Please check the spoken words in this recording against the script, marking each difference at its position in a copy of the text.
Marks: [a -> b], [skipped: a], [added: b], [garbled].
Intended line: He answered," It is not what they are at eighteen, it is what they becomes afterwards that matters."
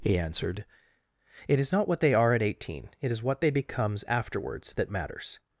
He answered," It is not what they are at eighteen, it is what they becomes afterwards that matters."